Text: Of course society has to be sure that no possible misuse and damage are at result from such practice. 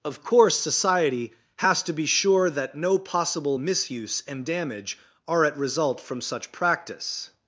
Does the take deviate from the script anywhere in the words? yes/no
no